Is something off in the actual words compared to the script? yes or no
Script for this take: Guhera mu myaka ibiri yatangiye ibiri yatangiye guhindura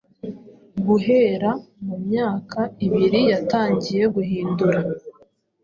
yes